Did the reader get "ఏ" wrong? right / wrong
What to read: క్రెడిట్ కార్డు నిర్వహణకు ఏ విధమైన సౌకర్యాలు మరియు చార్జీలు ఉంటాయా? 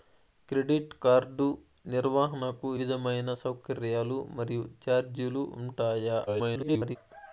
wrong